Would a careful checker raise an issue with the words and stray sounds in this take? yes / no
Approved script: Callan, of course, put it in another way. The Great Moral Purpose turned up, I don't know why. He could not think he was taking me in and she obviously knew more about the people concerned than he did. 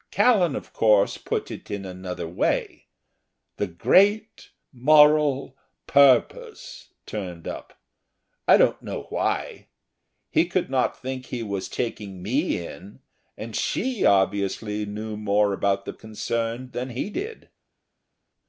yes